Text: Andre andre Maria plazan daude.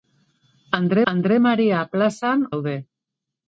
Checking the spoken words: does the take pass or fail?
pass